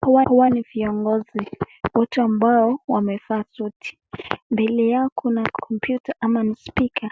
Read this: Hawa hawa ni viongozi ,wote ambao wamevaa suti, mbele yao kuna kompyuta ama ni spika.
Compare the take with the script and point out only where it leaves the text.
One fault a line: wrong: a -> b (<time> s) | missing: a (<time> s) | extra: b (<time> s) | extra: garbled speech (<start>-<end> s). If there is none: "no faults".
no faults